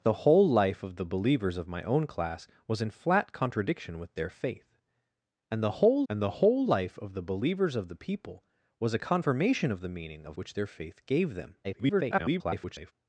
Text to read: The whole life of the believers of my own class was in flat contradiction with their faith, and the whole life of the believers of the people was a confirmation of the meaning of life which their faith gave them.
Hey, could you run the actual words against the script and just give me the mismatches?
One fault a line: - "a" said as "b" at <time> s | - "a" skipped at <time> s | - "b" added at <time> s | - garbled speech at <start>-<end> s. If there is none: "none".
- "and the whole" added at 6.1 s
- "life" skipped at 10.4 s
- garbled speech at 11.6-12.9 s